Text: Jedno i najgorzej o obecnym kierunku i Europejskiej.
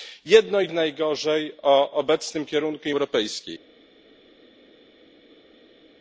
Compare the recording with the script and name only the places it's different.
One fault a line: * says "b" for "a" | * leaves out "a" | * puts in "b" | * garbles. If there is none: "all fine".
all fine